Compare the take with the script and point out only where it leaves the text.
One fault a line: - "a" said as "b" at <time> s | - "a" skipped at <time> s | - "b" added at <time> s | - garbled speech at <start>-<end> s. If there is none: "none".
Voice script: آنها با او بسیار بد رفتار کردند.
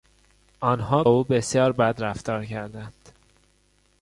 - "با" skipped at 1.0 s